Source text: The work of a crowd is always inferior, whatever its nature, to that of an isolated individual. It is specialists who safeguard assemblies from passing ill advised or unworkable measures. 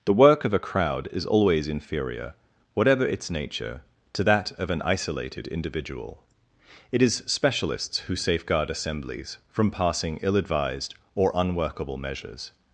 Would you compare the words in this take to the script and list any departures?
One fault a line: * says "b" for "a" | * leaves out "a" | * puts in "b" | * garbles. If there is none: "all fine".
all fine